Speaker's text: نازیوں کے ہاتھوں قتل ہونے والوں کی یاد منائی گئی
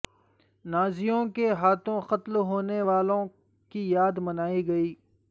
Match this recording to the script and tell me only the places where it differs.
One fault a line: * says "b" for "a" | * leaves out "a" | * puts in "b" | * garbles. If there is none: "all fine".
all fine